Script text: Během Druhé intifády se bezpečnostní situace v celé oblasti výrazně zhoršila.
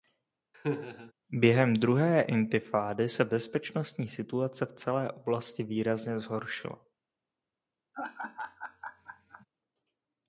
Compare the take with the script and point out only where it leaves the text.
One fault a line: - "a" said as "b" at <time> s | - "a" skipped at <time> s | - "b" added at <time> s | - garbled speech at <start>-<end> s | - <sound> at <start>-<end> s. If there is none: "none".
- laugh at 0.5-1.1 s
- laugh at 7.9-9.5 s